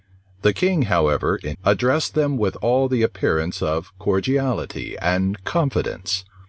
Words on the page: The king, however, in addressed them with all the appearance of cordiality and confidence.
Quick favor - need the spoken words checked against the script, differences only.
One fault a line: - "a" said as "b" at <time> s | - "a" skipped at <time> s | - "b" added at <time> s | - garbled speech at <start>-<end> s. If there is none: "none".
none